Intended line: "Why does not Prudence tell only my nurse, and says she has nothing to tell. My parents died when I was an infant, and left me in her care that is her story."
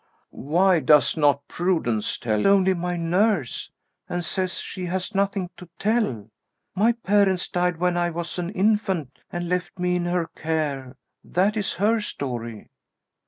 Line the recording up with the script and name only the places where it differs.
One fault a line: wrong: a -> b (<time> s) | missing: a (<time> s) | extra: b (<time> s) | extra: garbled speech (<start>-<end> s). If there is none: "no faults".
no faults